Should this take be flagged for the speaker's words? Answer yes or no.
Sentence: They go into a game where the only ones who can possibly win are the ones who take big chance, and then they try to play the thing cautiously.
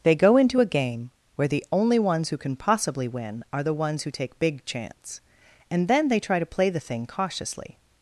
no